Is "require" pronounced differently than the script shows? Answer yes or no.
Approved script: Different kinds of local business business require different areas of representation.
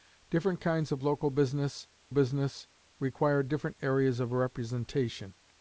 no